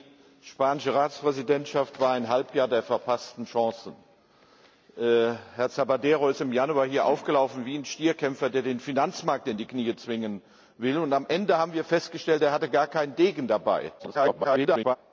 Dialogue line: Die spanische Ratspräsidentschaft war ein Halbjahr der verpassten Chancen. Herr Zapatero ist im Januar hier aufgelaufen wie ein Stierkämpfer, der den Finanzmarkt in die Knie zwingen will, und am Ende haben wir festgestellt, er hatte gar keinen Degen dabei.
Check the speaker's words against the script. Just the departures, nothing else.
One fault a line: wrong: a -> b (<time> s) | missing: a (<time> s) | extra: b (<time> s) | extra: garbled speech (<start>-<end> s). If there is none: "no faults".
extra: garbled speech (14.0-15.0 s)